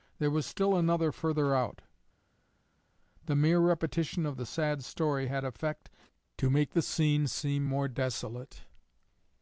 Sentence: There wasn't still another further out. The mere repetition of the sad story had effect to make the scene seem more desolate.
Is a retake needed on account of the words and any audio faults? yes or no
yes